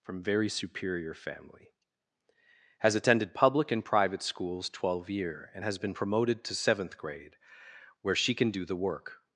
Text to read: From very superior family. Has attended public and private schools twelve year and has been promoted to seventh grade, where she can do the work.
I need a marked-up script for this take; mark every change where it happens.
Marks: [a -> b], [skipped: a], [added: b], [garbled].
From very superior family. Has attended public and private schools twelve year and has been promoted to seventh grade, where she can do the work.